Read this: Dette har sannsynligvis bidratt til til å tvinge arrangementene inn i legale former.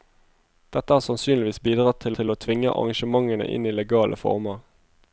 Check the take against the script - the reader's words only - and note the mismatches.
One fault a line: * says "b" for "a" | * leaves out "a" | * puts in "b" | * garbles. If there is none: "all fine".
all fine